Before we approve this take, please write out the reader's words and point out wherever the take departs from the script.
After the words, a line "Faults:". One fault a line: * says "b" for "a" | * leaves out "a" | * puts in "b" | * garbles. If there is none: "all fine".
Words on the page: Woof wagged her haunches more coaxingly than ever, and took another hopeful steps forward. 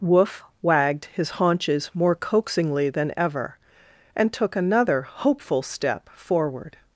Woof wagged his haunches more coaxingly than ever, and took another hopeful step forward.
Faults:
* says "his" for "her"
* says "step" for "steps"